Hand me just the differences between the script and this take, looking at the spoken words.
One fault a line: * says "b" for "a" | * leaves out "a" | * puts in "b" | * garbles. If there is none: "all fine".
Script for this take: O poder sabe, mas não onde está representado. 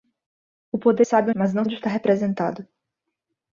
all fine